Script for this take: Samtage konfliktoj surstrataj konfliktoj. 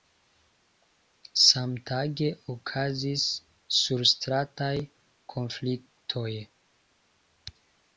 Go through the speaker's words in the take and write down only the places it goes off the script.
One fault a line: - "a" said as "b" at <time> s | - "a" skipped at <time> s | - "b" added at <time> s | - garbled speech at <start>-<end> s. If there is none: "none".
- "konfliktoj" said as "okazis" at 2.5 s